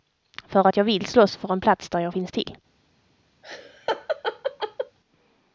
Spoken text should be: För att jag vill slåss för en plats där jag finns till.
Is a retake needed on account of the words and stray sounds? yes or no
yes